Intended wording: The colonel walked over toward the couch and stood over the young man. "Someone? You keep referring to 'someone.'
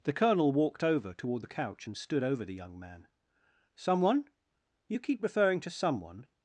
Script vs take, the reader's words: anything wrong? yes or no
no